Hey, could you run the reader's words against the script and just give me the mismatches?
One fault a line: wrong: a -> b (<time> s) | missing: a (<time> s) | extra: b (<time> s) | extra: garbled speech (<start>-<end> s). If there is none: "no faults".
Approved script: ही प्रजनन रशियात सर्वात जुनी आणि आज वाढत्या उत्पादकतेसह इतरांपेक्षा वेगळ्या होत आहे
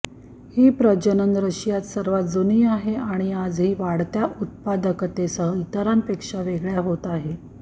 extra: आहे (2.7 s)
extra: ही (3.6 s)